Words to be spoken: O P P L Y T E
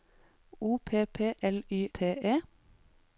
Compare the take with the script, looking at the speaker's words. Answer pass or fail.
pass